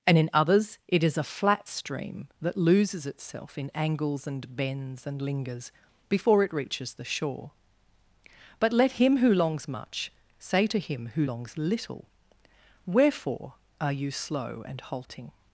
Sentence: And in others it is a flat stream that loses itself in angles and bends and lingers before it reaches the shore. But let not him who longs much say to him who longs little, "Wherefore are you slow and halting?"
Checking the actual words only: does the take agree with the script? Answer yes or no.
no